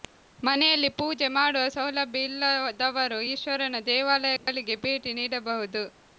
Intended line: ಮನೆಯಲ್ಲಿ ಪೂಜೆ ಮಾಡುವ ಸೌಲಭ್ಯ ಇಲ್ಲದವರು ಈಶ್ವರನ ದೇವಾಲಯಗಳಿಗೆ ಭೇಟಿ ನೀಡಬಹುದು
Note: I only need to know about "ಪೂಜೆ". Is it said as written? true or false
true